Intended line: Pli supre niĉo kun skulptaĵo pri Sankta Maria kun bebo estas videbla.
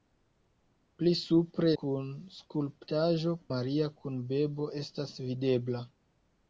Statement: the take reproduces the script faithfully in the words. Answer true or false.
false